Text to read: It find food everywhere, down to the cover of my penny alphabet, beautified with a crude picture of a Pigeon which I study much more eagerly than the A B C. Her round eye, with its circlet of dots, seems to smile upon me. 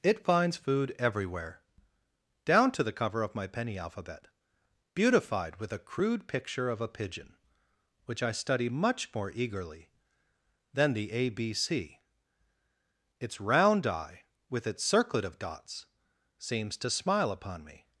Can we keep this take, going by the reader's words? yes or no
no